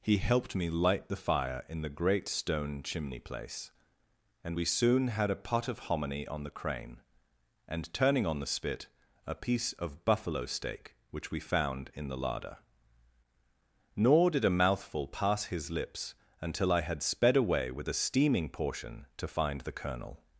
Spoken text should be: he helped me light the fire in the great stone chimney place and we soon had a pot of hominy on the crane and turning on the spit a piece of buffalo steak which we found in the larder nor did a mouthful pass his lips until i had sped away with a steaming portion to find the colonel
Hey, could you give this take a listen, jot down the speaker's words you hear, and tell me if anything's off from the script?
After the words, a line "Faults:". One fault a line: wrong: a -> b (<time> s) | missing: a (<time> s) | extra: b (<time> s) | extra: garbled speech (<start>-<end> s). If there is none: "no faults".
he helped me light the fire in the great stone chimney place and we soon had a pot of hominy on the crane and turning on the spit a piece of buffalo steak which we found in the larder nor did a mouthful pass his lips until i had sped away with a steaming portion to find the colonel
Faults:
no faults